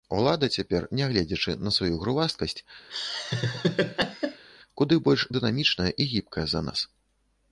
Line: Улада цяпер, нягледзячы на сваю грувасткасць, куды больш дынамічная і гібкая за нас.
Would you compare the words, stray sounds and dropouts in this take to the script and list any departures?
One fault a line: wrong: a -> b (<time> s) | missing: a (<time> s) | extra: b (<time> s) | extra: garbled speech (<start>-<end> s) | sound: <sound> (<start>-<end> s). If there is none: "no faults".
sound: laugh (2.9-4.4 s)